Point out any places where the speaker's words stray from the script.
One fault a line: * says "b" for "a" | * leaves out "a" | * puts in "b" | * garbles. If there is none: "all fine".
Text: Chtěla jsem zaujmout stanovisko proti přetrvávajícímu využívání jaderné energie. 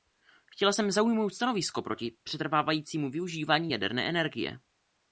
all fine